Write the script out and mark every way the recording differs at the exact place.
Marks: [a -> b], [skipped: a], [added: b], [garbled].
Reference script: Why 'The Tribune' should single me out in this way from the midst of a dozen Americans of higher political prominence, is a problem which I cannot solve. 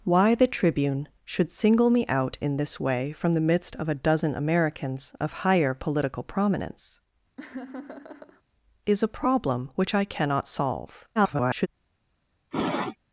Why 'The Tribune' should single me out in this way from the midst of a dozen Americans of higher political prominence, is a problem which I cannot solve. [garbled]